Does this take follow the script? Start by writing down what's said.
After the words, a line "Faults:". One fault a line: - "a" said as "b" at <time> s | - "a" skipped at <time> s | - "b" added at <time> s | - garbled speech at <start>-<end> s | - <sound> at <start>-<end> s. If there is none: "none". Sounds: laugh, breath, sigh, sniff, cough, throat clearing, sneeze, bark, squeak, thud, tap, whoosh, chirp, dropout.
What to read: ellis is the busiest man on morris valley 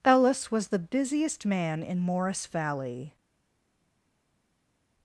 ellis was the busiest man in morris valley
Faults:
- "is" said as "was" at 0.5 s
- "on" said as "in" at 1.8 s